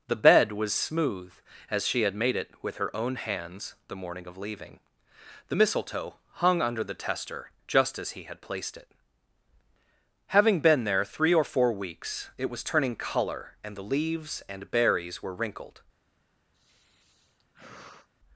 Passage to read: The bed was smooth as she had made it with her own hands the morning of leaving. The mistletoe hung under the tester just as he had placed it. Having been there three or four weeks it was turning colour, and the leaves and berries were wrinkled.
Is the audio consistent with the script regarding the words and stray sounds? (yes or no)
no